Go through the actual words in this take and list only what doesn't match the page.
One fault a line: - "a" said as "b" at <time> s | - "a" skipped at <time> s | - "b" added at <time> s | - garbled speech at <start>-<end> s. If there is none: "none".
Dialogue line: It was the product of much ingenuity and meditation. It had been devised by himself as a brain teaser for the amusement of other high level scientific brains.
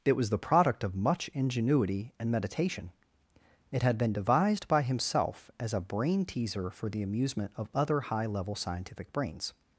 none